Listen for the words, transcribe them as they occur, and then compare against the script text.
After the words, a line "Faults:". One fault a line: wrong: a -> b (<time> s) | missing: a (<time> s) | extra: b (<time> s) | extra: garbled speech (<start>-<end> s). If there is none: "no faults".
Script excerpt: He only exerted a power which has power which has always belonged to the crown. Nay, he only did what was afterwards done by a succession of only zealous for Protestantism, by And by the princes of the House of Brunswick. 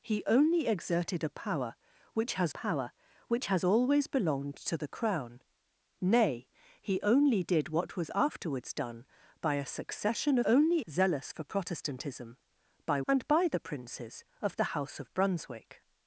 He only exerted a power which has power which has always belonged to the crown. Nay, he only did what was afterwards done by a succession of only zealous for Protestantism, by And by the princes of the House of Brunswick.
Faults:
no faults